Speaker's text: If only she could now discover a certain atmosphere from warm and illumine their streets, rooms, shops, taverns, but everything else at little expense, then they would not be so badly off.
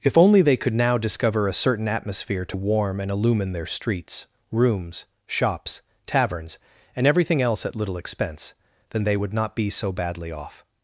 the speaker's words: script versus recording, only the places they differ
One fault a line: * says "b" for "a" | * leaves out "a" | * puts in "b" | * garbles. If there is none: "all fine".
* says "they" for "she"
* says "to" for "from"
* says "and" for "but"